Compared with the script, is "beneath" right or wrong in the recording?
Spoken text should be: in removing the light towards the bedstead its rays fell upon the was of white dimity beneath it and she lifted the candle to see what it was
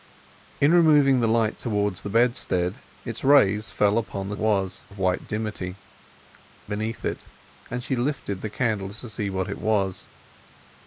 right